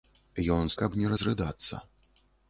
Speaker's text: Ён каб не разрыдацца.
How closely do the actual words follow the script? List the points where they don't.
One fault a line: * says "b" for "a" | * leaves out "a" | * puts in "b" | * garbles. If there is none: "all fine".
all fine